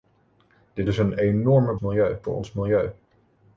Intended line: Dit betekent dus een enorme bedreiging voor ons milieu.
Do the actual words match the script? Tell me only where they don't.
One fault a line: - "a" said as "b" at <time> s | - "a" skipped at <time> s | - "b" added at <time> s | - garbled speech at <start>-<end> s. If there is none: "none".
- "betekent" skipped at 0.9 s
- "bedreiging" said as "milieu" at 1.8 s